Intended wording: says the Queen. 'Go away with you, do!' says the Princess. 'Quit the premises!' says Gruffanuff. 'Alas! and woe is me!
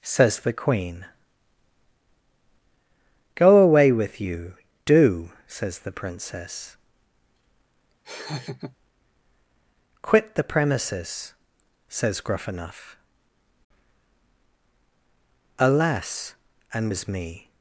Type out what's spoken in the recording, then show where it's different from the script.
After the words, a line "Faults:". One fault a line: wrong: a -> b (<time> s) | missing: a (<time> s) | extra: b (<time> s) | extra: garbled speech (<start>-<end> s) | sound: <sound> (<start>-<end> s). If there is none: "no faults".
says the Queen. 'Go away with you, do!' says the Princess. 'Quit the premises!' says Gruffanuff. 'Alas! and is me!
Faults:
sound: laugh (8.0-8.8 s)
missing: woe (16.9 s)